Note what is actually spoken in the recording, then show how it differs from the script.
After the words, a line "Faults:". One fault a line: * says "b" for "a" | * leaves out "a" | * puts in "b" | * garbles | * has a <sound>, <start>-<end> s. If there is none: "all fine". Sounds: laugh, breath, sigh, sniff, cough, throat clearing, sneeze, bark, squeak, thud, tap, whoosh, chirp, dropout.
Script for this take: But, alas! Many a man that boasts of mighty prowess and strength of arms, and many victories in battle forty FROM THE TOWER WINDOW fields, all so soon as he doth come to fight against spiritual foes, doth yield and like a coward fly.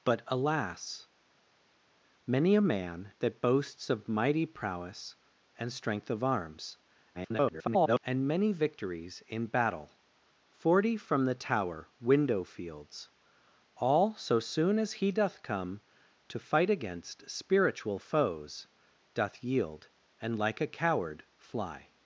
But, alas! Many a man that boasts of mighty prowess and strength of arms, [garbled] and many victories in battle forty FROM THE TOWER WINDOW fields, all so soon as he doth come to fight against spiritual foes, doth yield and like a coward fly.
Faults:
* garbles